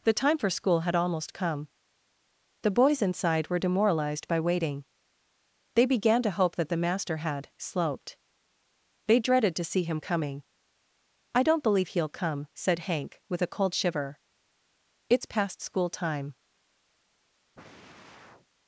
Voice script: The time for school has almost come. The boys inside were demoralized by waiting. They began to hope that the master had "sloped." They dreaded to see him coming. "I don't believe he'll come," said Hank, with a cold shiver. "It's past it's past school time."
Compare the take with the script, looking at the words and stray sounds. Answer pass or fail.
fail